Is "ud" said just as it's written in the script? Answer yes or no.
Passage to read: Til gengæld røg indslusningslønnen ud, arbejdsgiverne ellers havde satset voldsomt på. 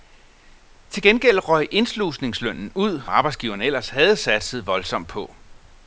yes